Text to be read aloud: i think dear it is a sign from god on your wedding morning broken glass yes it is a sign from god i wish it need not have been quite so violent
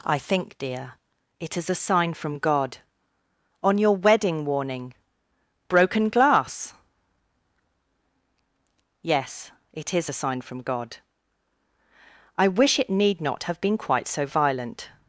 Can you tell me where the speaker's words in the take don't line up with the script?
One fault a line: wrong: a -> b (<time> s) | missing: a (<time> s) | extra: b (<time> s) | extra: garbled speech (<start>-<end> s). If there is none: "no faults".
wrong: morning -> warning (4.5 s)